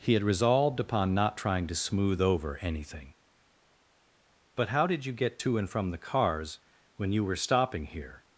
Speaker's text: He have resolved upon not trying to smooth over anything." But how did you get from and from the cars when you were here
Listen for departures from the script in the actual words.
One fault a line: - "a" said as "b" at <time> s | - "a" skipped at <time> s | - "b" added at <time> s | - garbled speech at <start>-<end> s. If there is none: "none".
- "have" said as "had" at 0.1 s
- "from" said as "to" at 5.4 s
- "stopping" added at 7.3 s